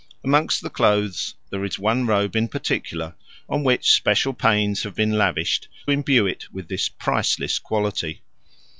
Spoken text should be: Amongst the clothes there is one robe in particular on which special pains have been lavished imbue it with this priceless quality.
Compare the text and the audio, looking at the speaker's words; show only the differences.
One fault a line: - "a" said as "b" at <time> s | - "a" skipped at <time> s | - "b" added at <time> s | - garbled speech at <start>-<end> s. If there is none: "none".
none